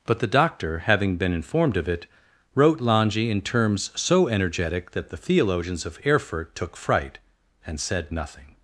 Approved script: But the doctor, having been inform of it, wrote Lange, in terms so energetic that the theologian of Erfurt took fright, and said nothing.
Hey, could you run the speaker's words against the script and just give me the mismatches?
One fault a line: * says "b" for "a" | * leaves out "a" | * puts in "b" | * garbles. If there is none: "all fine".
* says "informed" for "inform"
* says "theologians" for "theologian"